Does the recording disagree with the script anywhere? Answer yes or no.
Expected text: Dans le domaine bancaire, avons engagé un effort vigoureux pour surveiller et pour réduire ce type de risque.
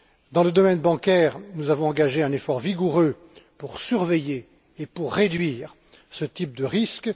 yes